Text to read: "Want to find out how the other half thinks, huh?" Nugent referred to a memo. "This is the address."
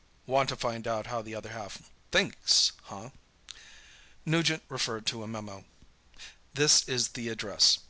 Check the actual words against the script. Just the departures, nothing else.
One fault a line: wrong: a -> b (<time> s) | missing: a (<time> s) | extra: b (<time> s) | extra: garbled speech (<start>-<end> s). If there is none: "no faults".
no faults